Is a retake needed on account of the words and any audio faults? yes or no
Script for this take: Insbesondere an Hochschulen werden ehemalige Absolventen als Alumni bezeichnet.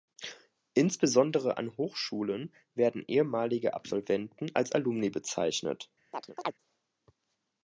yes